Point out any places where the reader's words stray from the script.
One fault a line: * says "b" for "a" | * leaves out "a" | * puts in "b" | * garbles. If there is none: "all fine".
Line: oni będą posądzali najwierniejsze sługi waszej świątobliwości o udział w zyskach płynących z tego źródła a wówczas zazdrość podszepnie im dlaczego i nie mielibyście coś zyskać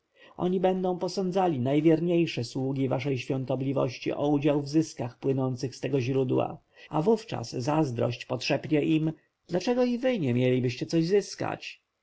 * puts in "wy"